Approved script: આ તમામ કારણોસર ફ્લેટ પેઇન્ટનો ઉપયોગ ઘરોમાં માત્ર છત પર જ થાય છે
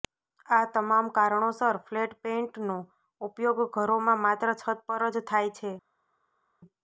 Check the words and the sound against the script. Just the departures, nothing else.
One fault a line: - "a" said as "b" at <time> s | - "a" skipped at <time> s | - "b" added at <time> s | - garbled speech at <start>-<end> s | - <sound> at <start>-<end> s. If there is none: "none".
none